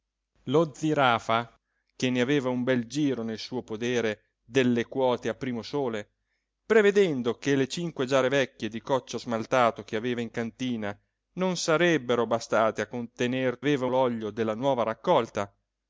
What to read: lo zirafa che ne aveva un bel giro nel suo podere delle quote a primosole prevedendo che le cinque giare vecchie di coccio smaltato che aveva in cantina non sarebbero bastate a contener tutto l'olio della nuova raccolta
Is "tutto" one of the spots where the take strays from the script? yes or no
yes